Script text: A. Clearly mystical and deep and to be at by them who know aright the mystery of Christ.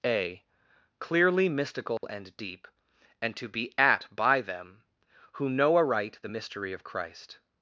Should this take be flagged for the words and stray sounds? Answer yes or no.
yes